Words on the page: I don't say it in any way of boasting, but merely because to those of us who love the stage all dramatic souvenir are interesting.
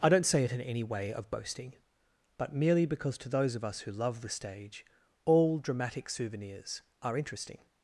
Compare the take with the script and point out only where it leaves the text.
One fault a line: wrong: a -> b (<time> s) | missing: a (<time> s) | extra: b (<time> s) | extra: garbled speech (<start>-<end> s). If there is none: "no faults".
wrong: souvenir -> souvenirs (6.1 s)